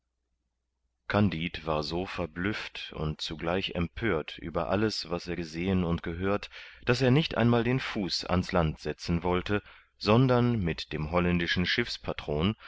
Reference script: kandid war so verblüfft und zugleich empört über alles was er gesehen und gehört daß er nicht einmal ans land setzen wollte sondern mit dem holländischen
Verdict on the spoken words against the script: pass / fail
fail